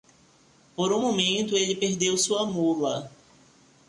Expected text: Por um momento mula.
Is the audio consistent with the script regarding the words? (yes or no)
no